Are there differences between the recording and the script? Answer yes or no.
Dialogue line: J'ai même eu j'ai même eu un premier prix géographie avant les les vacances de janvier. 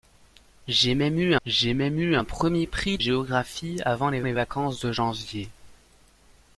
no